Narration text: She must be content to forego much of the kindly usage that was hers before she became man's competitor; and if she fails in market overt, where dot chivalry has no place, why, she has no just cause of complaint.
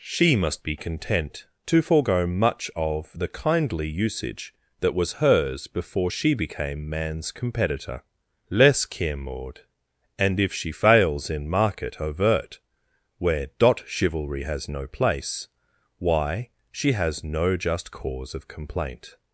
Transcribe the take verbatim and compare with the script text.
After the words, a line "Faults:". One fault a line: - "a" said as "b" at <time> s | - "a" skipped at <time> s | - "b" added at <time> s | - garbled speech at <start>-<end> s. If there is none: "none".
She must be content to forego much of the kindly usage that was hers before she became man's competitor; less care maud and if she fails in market overt, where dot chivalry has no place, why, she has no just cause of complaint.
Faults:
- "less care maud" added at 8.5 s